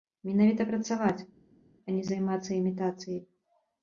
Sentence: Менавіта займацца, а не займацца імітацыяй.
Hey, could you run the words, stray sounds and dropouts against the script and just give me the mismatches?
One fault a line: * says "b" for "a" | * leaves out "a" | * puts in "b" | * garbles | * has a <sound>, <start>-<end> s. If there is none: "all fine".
* says "працаваць" for "займацца"